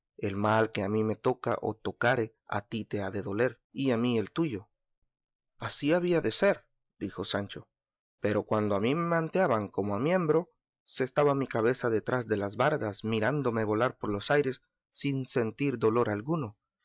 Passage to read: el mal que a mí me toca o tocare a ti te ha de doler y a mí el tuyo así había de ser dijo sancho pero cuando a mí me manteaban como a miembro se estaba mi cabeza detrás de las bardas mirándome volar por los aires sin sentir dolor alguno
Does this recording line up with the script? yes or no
yes